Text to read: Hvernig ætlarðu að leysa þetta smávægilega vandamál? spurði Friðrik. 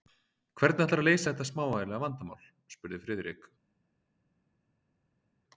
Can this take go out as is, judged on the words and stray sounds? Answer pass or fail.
pass